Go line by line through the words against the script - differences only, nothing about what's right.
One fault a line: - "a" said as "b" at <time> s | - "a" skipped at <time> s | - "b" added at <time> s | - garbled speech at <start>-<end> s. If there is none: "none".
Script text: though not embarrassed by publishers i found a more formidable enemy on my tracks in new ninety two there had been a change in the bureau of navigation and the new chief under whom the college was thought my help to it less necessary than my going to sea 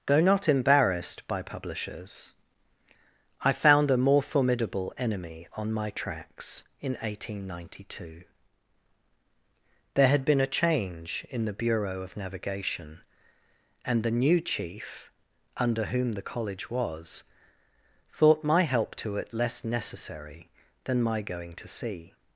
- "new" said as "eighteen" at 7.0 s